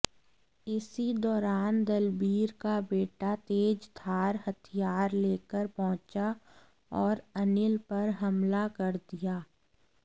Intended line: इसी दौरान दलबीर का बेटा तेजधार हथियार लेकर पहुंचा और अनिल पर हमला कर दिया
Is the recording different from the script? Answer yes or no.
no